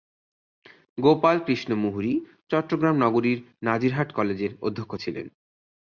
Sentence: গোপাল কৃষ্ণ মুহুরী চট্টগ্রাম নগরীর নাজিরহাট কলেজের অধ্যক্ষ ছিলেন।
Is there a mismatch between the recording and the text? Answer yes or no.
no